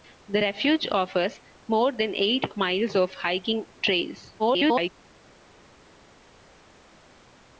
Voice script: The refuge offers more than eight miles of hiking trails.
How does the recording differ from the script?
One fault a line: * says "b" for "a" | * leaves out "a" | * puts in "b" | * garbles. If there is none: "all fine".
* garbles